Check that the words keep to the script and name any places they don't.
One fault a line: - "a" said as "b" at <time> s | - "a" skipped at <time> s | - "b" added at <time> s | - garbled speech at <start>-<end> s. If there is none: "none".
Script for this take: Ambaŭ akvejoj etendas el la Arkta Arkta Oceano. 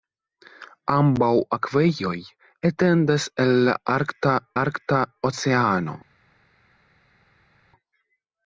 none